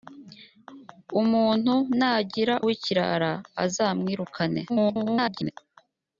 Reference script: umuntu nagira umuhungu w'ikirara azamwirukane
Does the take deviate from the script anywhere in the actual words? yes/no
yes